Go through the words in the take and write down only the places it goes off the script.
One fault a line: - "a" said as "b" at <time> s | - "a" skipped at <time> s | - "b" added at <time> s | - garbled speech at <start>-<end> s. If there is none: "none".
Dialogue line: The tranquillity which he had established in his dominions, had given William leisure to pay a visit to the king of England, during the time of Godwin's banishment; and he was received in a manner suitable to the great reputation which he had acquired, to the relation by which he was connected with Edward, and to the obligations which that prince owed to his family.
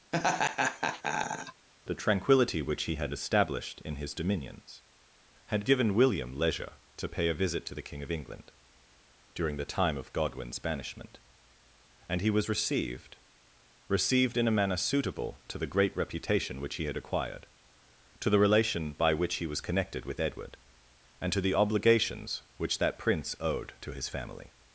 - "received" added at 13.9 s